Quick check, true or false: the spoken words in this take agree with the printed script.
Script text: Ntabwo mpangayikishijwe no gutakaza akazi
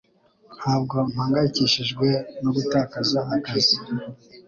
true